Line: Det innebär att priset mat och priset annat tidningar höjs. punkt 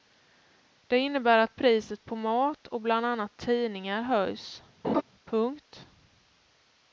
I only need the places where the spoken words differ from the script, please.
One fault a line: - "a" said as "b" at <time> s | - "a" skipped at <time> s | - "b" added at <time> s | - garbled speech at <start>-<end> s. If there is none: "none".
- "på" added at 2.0 s
- "priset" said as "bland" at 2.8 s